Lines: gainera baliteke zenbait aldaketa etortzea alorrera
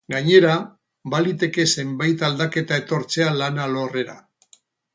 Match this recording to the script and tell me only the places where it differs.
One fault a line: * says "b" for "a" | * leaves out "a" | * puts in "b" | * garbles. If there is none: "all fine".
* puts in "lan"